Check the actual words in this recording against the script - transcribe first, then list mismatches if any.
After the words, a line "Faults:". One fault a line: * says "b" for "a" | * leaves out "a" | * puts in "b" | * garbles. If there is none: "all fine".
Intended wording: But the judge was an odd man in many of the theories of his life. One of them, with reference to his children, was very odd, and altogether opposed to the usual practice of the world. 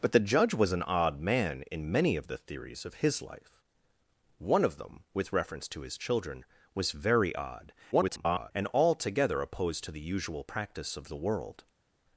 But the judge was an odd man in many of the theories of his life. One of them, with reference to his children, was very odd, [garbled] and altogether opposed to the usual practice of the world.
Faults:
* garbles